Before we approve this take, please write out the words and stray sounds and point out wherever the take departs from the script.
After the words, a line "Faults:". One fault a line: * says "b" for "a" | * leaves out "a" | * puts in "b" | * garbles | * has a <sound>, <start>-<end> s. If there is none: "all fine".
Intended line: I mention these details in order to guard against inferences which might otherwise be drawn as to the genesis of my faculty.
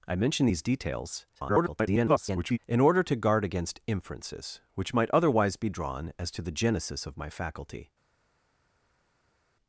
I mention these details [garbled] in order to guard against inferences which might otherwise be drawn as to the genesis of my faculty.
Faults:
* garbles